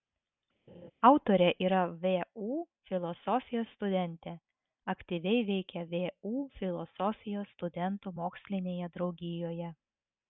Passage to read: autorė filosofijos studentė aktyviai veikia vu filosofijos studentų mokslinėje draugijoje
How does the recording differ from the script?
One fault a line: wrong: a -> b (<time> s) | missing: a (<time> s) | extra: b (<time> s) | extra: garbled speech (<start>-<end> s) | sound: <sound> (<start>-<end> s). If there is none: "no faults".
sound: laugh (0.7-0.9 s)
extra: yra vu (1.7 s)